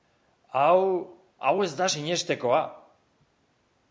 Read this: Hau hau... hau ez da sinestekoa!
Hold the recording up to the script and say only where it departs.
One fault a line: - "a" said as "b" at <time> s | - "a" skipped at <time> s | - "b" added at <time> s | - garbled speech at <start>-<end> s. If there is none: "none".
- "hau" skipped at 1.5 s